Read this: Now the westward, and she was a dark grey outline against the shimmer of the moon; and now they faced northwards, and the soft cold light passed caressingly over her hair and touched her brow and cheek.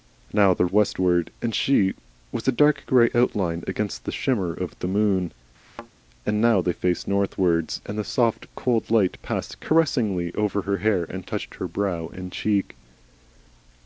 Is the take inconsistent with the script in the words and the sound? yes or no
yes